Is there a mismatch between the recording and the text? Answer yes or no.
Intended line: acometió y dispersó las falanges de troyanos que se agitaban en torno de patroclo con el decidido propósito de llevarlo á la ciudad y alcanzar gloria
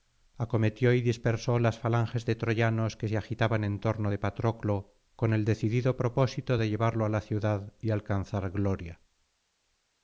no